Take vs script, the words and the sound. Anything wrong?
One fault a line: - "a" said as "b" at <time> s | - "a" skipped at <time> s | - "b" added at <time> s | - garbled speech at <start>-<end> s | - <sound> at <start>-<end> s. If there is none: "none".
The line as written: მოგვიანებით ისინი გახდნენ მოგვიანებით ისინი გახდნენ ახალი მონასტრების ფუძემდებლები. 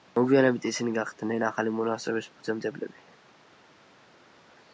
- "მოგვიანებით ისინი გახდნენ" skipped at 1.4 s